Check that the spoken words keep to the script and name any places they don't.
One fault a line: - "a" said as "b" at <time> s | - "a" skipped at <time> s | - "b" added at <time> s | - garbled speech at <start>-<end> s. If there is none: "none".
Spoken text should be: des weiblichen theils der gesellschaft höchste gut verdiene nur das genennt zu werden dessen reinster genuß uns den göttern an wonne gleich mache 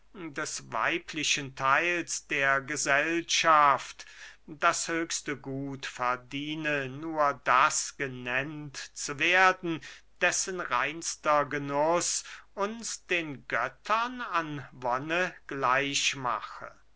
- "das" added at 4.5 s